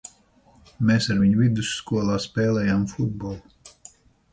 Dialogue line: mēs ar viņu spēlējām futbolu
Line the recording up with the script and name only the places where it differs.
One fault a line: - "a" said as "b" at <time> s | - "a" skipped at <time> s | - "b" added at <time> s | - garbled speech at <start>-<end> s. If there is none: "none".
- "vidusskolā" added at 1.4 s